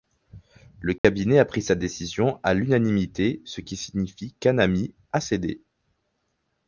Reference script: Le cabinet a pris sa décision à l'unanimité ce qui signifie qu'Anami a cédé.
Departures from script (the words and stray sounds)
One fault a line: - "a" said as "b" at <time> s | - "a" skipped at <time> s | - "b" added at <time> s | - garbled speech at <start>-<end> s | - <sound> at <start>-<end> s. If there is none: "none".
- dropout at 1.0-1.0 s